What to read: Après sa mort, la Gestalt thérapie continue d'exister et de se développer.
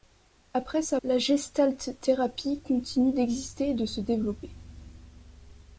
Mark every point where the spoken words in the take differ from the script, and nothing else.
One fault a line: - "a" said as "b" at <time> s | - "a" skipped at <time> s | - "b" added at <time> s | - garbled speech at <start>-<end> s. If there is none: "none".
- "mort" skipped at 1.0 s